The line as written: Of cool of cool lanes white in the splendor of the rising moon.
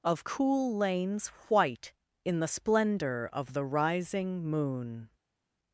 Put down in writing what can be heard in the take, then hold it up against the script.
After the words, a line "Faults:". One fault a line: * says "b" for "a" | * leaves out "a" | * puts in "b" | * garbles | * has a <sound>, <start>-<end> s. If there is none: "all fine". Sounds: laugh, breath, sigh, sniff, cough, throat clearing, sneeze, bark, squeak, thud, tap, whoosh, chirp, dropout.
Of cool lanes white in the splendor of the rising moon.
Faults:
* leaves out "of cool"